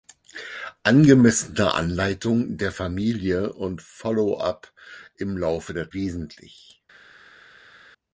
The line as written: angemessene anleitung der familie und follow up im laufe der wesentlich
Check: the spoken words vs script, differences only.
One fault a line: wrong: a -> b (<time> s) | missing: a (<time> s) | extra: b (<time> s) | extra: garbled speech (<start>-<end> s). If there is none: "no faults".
no faults